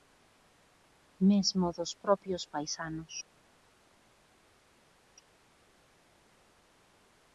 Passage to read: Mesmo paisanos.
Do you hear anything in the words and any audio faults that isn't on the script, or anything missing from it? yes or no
yes